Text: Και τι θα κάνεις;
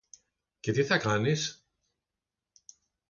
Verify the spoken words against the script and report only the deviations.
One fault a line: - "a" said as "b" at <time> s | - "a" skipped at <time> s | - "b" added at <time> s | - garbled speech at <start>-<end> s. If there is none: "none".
none